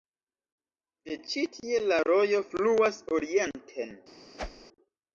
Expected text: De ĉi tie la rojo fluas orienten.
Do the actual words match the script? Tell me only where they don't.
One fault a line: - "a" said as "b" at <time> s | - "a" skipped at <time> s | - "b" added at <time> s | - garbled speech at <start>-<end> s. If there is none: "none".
none